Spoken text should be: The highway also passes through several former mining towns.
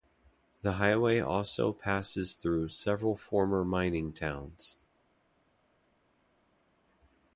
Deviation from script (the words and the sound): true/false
false